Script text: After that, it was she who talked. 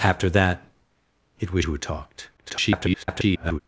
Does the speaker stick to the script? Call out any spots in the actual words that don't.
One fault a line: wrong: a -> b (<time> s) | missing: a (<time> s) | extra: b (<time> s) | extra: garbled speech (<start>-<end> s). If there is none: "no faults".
missing: she (1.6 s)
extra: garbled speech (2.4-3.6 s)